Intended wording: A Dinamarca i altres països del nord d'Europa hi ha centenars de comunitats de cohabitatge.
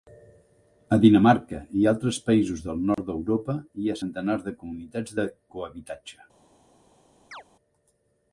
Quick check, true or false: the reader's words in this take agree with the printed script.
true